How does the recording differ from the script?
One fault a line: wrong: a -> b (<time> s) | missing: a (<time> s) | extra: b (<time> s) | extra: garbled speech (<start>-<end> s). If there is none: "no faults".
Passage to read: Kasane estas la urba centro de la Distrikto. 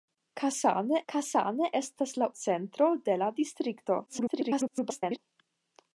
extra: kasane (1.1 s)
missing: urba (2.3 s)
extra: garbled speech (4.1-5.2 s)